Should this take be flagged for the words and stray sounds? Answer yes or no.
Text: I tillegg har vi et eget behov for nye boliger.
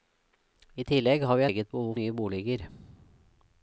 yes